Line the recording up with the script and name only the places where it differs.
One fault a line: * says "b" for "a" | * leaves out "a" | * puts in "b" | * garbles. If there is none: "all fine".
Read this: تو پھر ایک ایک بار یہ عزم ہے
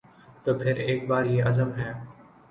* leaves out "ایک"